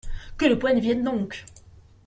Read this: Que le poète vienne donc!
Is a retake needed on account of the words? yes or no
no